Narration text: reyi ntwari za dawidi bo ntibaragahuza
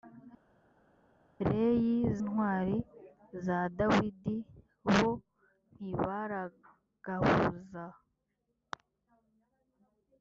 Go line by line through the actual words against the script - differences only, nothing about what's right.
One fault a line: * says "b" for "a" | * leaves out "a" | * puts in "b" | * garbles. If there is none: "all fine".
all fine